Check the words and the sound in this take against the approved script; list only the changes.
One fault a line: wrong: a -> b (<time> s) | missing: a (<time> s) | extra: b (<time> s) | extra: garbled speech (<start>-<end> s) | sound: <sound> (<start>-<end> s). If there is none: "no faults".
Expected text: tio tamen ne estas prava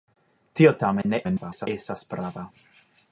sound: dropout (1.0-1.0 s)
extra: garbled speech (1.2-1.7 s)